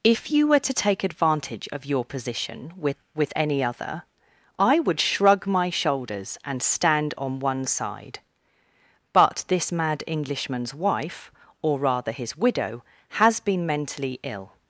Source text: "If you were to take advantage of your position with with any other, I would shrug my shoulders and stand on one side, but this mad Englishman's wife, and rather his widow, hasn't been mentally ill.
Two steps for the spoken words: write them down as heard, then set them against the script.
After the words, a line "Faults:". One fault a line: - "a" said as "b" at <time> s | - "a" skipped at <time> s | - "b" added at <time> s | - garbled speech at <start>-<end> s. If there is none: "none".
"If you were to take advantage of your position with with any other, I would shrug my shoulders and stand on one side, but this mad Englishman's wife, or rather his widow, has been mentally ill.
Faults:
- "and" said as "or" at 11.6 s
- "hasn't" said as "has" at 13.2 s